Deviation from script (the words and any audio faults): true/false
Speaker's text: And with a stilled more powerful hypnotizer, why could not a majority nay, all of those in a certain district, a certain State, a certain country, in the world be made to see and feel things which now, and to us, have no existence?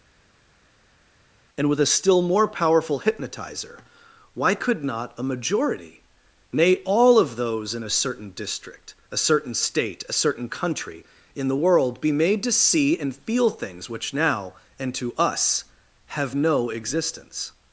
true